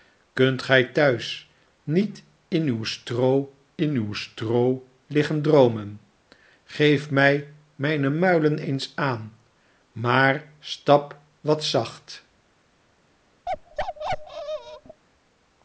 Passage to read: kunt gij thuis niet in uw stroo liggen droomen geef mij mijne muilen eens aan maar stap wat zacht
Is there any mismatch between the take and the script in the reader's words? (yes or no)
yes